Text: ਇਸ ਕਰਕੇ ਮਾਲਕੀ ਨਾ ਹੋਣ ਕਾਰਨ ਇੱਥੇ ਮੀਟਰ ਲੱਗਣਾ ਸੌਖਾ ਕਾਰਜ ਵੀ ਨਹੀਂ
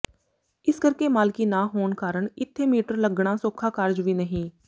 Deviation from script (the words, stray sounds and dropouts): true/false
false